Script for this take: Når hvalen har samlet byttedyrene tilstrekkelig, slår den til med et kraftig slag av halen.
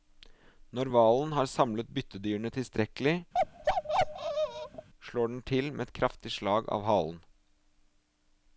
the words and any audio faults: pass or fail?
fail